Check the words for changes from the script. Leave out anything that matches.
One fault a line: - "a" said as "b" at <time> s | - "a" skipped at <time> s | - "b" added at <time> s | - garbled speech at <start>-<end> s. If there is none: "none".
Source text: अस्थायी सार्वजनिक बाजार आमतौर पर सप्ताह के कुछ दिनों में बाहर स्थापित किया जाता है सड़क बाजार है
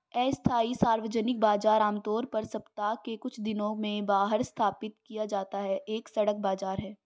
- "एक" added at 5.9 s